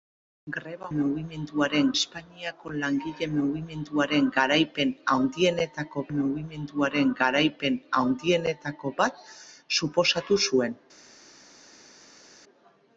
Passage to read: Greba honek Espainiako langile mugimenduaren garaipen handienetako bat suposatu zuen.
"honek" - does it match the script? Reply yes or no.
no